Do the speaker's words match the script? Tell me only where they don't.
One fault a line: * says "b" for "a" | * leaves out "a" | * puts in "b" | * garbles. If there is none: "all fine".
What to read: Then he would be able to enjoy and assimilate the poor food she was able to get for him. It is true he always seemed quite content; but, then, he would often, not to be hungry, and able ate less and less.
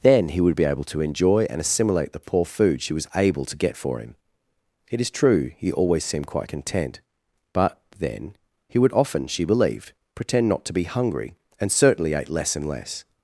* puts in "she believed pretend"
* says "certainly" for "able"